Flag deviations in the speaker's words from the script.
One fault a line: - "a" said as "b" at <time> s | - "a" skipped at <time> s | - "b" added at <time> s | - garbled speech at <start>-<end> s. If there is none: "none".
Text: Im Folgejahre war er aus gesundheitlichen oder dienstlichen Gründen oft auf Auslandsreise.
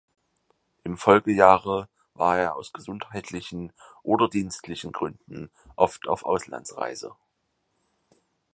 none